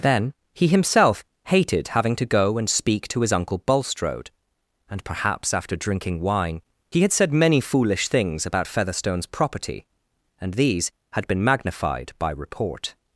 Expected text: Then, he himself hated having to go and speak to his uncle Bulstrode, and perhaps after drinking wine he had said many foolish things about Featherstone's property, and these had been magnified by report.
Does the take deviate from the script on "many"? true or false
false